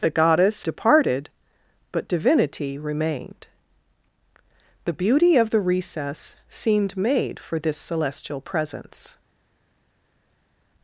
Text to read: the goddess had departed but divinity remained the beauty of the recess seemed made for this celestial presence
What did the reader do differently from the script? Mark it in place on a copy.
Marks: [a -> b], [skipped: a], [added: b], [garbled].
the goddess [skipped: had] departed but divinity remained the beauty of the recess seemed made for this celestial presence